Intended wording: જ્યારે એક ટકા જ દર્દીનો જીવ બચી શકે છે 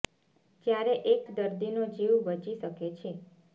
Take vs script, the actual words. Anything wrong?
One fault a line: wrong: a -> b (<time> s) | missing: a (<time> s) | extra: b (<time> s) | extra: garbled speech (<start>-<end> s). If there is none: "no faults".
missing: ટકા (1.2 s)